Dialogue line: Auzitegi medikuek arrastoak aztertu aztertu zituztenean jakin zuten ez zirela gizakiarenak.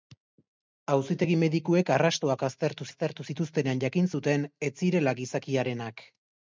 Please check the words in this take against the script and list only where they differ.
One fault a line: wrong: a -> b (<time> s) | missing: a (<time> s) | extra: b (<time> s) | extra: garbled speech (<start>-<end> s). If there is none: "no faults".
no faults